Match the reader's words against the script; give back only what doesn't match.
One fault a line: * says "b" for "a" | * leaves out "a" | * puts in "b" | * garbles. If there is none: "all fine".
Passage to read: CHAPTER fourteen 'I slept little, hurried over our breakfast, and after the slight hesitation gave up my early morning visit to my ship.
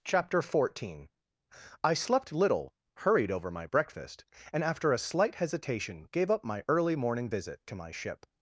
* says "my" for "our"
* says "a" for "the"